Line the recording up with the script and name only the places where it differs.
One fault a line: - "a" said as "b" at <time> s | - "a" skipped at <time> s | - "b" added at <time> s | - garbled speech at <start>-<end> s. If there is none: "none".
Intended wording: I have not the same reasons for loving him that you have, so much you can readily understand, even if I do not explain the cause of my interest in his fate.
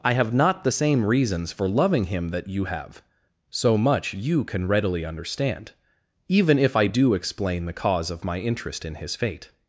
- "not" skipped at 7.1 s